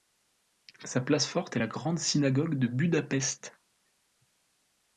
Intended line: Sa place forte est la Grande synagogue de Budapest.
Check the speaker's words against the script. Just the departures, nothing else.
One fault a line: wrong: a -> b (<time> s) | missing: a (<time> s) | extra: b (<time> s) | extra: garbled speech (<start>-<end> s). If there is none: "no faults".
no faults